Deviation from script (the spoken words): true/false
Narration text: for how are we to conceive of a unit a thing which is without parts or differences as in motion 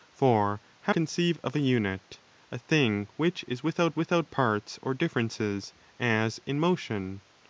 true